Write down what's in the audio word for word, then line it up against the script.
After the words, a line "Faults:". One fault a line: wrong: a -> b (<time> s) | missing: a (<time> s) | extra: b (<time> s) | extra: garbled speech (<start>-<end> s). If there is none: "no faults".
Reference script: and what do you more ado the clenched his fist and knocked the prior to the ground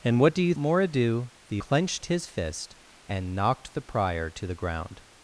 and what do you more ado the clenched his fist and knocked the prior to the ground
Faults:
no faults